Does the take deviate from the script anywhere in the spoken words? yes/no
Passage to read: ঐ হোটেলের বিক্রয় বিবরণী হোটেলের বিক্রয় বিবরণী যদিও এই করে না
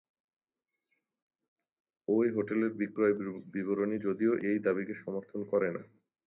yes